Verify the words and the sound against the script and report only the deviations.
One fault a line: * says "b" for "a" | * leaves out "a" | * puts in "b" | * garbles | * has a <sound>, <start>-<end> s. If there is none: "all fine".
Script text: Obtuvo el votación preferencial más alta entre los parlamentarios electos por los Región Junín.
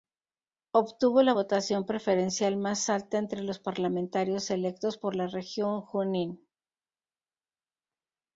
* says "la" for "el"
* says "la" for "los"